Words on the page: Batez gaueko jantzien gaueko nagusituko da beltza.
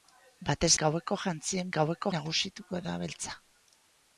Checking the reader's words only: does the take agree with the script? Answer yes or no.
yes